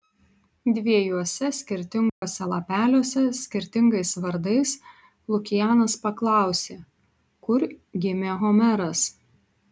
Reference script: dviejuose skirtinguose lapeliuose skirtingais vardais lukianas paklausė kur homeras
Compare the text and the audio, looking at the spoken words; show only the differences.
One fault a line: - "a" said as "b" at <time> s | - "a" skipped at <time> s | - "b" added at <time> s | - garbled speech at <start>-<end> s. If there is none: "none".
- "gimė" added at 8.1 s